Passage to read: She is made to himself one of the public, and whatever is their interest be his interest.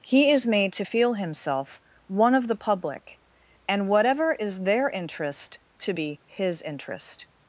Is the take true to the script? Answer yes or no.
no